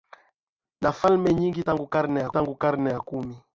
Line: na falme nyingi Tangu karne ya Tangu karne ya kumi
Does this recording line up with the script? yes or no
yes